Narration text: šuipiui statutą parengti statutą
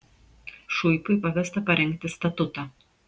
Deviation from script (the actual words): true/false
true